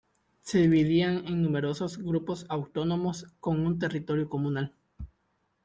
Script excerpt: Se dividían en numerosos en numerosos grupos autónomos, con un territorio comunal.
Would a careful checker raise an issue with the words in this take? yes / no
yes